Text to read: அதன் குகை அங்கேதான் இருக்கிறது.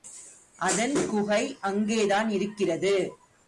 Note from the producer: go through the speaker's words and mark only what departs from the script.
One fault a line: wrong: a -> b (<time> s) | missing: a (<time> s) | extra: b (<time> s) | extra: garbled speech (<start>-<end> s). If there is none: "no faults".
no faults